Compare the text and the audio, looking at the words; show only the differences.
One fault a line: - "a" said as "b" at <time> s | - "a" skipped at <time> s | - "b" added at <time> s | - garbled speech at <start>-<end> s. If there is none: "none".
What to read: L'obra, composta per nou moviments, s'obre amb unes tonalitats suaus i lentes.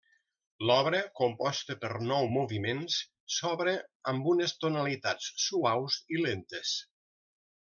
none